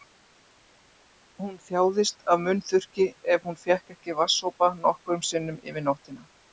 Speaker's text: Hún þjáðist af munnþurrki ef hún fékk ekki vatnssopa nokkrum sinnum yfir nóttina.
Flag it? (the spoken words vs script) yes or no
no